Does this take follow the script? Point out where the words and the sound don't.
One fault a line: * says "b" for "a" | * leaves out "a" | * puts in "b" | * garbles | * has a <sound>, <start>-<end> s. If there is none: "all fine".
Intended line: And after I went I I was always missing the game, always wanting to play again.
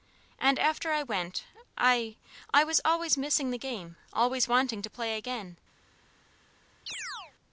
* has a chirp, 6.9-7.3 s